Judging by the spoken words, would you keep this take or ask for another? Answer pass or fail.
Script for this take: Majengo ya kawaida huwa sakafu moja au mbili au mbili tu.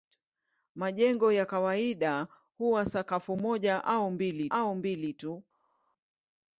pass